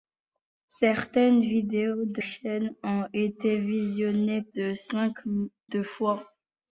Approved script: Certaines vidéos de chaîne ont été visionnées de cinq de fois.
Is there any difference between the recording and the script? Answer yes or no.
no